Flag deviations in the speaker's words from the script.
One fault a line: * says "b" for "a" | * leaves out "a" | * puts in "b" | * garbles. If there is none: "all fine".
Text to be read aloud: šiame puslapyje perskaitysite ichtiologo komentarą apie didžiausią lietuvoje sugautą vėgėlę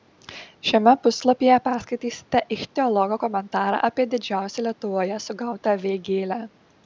all fine